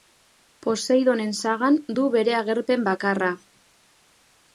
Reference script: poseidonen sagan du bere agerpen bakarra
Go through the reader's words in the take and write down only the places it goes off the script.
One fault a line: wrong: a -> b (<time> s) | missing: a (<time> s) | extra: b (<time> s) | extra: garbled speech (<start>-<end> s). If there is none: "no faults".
no faults